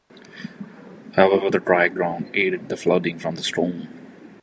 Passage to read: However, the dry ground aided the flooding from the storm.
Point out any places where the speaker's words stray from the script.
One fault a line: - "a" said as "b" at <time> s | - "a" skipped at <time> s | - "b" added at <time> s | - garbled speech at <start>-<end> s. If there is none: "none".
none